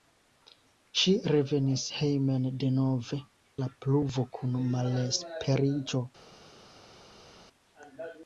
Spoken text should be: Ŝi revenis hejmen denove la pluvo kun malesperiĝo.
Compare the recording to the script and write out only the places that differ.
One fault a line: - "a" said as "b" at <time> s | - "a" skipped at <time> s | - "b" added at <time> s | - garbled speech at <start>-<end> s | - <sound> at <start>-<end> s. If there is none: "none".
none